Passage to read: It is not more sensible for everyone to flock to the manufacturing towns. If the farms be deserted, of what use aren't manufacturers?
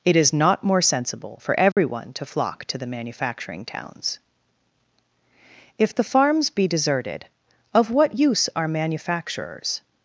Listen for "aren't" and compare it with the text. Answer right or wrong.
wrong